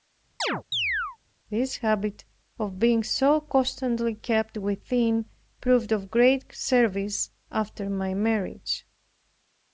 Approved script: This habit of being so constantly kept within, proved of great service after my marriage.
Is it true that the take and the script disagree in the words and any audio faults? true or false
true